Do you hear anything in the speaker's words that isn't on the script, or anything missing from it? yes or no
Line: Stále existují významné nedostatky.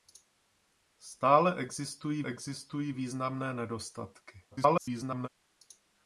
yes